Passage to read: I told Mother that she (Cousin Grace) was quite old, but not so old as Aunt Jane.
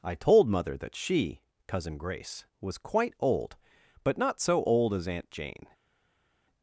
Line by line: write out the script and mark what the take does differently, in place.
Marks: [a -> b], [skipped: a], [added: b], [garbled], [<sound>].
I told Mother that she (Cousin Grace) was quite old, but not so old as Aunt Jane.